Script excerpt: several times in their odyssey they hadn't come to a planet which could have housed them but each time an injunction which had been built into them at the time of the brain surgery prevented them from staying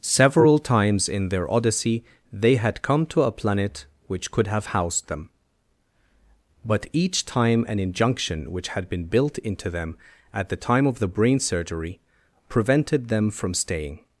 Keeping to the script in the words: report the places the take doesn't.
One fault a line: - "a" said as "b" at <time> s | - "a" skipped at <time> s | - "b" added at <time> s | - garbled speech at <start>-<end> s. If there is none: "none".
- "hadn't" said as "had" at 2.5 s